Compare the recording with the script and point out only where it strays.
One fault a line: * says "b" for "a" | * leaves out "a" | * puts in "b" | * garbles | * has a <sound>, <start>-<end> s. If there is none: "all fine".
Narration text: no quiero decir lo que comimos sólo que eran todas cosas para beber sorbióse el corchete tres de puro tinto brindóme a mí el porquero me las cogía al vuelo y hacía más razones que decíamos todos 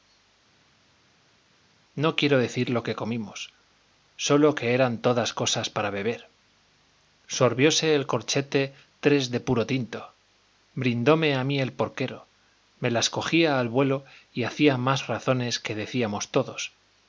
all fine